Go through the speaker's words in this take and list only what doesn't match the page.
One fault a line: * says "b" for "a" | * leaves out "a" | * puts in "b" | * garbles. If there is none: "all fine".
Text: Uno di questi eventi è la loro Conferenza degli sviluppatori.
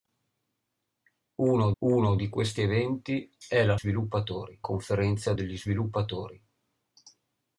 * puts in "uno"
* says "sviluppatori" for "loro"